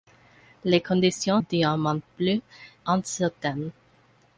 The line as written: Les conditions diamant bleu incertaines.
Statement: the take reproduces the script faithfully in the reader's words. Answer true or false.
true